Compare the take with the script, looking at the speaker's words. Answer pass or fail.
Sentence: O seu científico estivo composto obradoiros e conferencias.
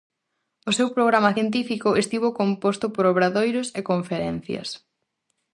fail